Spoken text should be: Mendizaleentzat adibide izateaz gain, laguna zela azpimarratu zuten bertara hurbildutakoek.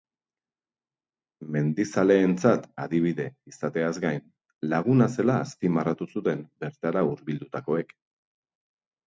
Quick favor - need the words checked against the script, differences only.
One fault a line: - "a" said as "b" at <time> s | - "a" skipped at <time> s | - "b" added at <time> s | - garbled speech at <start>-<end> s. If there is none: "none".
none